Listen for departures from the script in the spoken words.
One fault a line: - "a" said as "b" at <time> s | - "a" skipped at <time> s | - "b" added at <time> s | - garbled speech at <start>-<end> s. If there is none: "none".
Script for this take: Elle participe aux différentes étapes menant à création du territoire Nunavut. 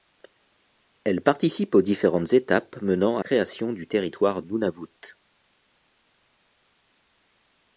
none